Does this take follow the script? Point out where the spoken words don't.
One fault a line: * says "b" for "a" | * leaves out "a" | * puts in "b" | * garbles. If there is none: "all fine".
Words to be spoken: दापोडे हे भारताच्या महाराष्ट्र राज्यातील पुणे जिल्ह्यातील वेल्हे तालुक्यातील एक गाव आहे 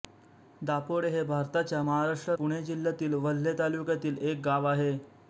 * leaves out "राज्यातील"